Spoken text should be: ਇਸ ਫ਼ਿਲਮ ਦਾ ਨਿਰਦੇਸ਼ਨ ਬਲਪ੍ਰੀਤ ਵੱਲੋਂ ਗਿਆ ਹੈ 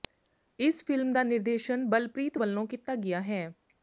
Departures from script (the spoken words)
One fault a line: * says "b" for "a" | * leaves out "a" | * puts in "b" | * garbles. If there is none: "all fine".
* puts in "ਕੀਤਾ"